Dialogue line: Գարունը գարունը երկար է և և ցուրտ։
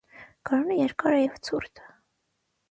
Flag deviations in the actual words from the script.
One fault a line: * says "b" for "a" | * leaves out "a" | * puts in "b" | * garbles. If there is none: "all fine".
* leaves out "գարունը"
* leaves out "և"